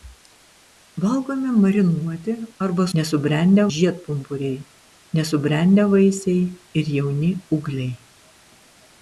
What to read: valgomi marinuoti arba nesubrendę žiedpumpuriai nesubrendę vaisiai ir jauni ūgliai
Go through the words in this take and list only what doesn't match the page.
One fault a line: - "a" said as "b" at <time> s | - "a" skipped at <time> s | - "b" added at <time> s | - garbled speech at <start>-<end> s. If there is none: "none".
none